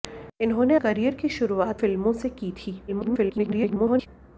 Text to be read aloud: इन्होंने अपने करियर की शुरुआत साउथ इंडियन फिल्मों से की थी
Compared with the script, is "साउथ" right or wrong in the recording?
wrong